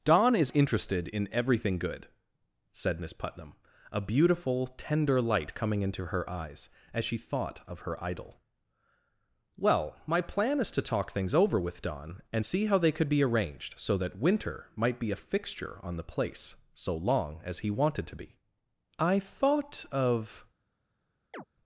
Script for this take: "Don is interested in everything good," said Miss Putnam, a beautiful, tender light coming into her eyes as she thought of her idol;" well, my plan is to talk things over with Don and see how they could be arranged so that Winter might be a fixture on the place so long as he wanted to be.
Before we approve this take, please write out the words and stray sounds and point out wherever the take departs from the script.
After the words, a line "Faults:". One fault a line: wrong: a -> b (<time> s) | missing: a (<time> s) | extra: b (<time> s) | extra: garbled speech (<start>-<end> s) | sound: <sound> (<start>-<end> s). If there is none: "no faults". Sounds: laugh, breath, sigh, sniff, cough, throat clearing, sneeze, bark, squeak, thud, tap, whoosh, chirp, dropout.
"Don is interested in everything good," said Miss Putnam, a beautiful, tender light coming into her eyes as she thought of her idol;" well, my plan is to talk things over with Don and see how they could be arranged so that Winter might be a fixture on the place so long as he wanted to be. I thought of
Faults:
extra: I thought of (19.0 s)
sound: chirp (21.3-21.4 s)